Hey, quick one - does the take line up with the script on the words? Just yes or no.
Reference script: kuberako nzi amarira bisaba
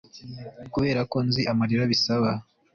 yes